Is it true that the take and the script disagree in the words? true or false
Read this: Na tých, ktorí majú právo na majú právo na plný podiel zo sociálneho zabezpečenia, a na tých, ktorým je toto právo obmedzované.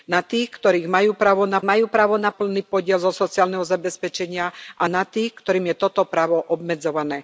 false